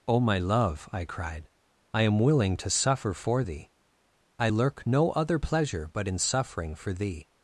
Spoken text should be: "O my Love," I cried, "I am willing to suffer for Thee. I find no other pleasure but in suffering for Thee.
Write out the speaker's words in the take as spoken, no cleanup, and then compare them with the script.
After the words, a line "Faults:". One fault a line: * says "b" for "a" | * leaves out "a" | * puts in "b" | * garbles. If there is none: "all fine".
"O my Love," I cried, "I am willing to suffer for Thee. I lurk no other pleasure but in suffering for Thee.
Faults:
* says "lurk" for "find"